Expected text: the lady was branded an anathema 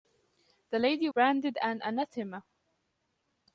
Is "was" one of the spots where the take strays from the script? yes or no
yes